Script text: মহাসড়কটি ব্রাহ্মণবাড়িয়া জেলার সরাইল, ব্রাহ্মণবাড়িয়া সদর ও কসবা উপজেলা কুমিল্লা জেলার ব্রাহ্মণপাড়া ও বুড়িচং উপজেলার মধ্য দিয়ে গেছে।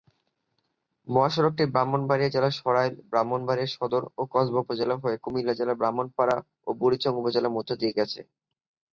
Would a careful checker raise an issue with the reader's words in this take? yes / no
yes